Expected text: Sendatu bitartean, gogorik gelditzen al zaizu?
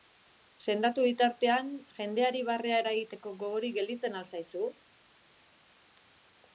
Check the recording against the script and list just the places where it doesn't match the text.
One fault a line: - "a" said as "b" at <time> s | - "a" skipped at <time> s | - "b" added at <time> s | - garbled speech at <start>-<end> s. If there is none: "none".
- "jendeari barrea eragiteko" added at 2.0 s